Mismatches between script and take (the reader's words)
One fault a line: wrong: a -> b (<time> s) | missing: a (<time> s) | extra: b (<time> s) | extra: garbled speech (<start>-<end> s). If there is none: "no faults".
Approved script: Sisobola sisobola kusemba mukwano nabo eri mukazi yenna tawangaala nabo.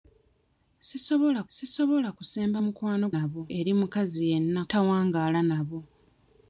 no faults